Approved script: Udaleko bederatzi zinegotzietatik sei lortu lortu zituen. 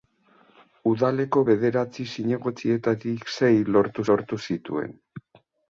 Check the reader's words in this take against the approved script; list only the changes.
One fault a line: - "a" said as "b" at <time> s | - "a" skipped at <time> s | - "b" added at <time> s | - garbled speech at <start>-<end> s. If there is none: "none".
none